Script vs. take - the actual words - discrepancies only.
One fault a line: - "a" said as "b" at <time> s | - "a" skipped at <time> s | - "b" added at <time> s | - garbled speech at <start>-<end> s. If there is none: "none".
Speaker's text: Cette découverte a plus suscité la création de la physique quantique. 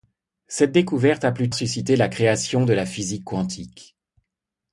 none